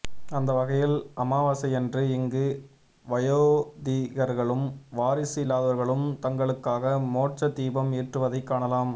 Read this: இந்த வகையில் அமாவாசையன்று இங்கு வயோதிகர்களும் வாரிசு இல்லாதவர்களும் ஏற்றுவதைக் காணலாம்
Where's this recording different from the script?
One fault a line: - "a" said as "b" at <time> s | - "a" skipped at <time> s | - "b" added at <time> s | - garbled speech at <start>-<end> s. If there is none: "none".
- "இந்த" said as "அந்த" at 0.3 s
- "தங்களுக்காக மோட்ச தீபம்" added at 6.2 s